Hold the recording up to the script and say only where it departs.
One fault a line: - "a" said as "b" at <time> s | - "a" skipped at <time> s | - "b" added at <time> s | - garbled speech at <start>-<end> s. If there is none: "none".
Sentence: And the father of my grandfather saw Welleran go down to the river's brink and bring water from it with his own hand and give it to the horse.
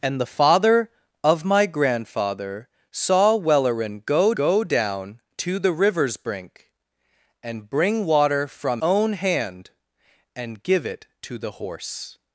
- "go" added at 4.3 s
- "it with his" skipped at 8.8 s